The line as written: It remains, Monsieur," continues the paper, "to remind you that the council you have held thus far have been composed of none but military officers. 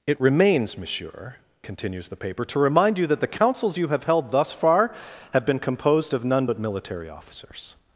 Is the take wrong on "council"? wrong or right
wrong